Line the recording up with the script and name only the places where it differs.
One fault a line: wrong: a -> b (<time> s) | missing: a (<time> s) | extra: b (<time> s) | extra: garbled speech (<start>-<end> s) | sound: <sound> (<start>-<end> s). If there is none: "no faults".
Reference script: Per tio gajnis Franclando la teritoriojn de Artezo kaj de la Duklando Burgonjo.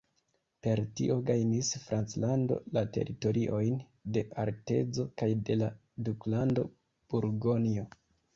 no faults